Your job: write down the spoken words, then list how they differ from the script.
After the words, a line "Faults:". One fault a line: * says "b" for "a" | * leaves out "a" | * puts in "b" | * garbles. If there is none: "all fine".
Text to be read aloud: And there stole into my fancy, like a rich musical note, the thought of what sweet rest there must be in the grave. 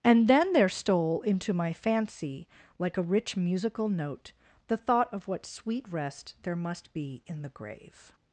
And then there stole into my fancy, like a rich musical note, the thought of what sweet rest there must be in the grave.
Faults:
* puts in "then"